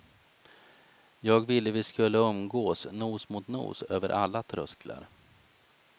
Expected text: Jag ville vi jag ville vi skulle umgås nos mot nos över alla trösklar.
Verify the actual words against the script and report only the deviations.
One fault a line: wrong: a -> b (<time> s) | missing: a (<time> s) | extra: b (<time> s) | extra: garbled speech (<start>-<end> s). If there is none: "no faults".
missing: jag ville vi (1.8 s)